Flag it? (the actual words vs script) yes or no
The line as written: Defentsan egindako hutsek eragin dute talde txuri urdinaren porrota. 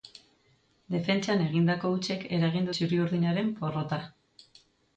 yes